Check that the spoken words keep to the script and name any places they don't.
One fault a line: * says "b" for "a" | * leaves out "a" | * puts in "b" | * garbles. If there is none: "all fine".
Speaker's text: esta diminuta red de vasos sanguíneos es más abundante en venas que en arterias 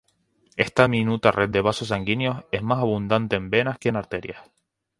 all fine